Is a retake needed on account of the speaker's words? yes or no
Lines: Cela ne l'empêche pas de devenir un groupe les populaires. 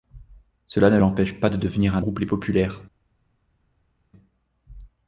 no